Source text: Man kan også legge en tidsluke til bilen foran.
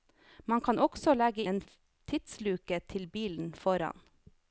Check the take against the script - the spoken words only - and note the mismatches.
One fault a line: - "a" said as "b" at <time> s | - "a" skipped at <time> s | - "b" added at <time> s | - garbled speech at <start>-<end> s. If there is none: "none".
none